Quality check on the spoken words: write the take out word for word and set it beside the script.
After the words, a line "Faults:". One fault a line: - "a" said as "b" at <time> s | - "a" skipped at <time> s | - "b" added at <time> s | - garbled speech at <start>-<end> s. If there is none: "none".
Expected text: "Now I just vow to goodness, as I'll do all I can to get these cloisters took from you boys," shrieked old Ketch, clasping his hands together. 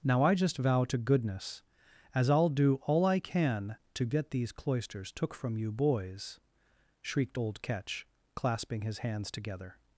"Now I just vow to goodness, as I'll do all I can to get these cloisters took from you boys," shrieked old Ketch, clasping his hands together.
Faults:
none